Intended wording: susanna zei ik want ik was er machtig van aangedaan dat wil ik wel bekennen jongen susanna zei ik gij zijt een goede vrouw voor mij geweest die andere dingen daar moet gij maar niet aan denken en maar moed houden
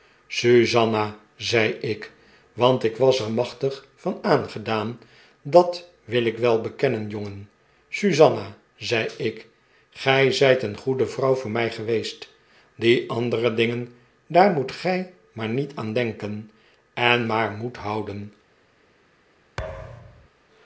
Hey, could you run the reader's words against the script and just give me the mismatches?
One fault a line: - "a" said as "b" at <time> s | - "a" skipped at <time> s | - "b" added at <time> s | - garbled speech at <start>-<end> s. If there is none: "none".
none